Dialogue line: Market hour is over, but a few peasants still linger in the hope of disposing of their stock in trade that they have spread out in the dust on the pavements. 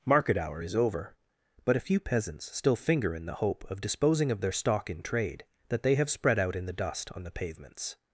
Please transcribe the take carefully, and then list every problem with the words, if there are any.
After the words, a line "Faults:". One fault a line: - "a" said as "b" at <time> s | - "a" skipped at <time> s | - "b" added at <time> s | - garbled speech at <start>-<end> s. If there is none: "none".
Market hour is over, but a few peasants still finger in the hope of disposing of their stock in trade that they have spread out in the dust on the pavements.
Faults:
- "linger" said as "finger" at 2.8 s